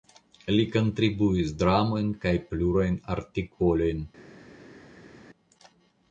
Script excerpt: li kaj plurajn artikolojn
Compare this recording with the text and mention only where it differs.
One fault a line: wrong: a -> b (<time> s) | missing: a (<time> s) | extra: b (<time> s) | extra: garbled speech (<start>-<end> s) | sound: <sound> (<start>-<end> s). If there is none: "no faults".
extra: kontribuis dramojn (0.8 s)